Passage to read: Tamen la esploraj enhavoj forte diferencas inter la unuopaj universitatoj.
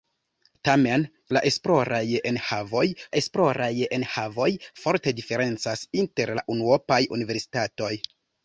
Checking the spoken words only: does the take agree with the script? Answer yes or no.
no